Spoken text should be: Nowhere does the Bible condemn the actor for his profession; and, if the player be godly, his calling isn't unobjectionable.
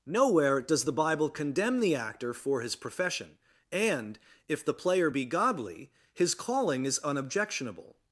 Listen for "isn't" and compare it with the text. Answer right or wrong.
wrong